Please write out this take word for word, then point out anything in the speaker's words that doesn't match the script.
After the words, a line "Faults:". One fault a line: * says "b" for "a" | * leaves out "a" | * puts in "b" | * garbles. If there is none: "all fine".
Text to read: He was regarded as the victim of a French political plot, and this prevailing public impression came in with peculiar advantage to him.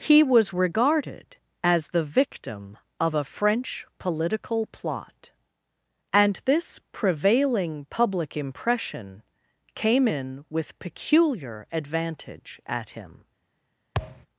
He was regarded as the victim of a French political plot, and this prevailing public impression came in with peculiar advantage at him.
Faults:
* says "at" for "to"